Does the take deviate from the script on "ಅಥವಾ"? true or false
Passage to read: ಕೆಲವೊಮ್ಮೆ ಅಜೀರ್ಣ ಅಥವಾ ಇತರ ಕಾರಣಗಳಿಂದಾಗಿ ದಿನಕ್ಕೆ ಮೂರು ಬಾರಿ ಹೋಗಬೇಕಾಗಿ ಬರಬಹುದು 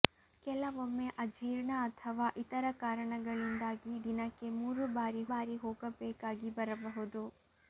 false